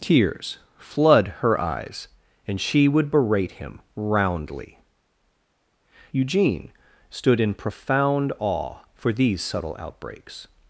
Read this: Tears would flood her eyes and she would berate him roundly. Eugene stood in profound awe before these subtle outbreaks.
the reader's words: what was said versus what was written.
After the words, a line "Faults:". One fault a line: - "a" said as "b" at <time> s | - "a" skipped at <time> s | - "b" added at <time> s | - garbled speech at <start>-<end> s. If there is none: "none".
Tears flood her eyes and she would berate him roundly. Eugene stood in profound awe for these subtle outbreaks.
Faults:
- "would" skipped at 0.6 s
- "before" said as "for" at 8.9 s